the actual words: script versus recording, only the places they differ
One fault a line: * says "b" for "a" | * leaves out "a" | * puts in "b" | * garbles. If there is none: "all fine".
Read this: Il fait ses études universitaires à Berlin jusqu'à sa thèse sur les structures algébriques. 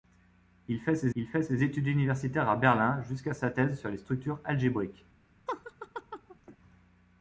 * puts in "il fait ses"